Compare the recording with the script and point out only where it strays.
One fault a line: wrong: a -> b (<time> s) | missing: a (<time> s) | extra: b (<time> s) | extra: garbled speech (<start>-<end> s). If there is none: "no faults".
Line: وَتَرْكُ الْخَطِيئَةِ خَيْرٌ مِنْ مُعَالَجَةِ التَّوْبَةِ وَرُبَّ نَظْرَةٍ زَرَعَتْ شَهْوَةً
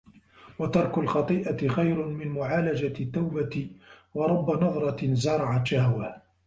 no faults